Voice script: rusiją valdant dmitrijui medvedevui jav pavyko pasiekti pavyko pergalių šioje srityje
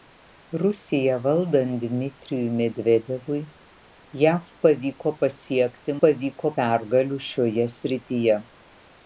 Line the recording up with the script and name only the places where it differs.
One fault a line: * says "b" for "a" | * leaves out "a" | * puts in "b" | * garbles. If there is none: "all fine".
all fine